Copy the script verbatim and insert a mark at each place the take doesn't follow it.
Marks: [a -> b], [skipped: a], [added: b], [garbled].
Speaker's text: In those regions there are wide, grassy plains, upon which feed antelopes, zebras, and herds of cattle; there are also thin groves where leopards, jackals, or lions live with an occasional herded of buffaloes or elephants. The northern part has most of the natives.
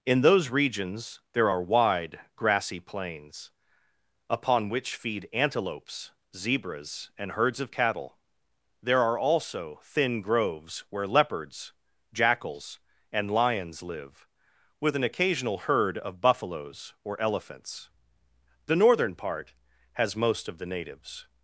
In those regions there are wide, grassy plains, upon which feed antelopes, zebras, and herds of cattle; there are also thin groves where leopards, jackals, [or -> and] lions live with an occasional [herded -> herd] of buffaloes or elephants. The northern part has most of the natives.